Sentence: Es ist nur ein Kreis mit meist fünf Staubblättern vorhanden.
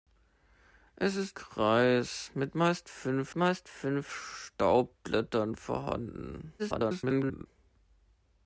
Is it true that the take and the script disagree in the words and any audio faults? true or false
true